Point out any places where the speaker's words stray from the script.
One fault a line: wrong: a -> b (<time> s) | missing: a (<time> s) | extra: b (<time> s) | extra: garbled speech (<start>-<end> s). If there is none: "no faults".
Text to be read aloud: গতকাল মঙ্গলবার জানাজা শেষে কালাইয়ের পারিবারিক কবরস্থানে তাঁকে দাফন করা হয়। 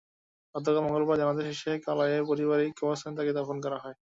no faults